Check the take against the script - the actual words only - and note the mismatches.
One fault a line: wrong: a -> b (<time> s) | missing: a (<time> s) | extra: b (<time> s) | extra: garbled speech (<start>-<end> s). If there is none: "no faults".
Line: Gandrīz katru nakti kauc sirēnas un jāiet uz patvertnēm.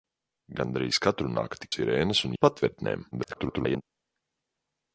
missing: kauc (1.7 s)
missing: jāiet (2.4 s)
extra: garbled speech (3.1-3.8 s)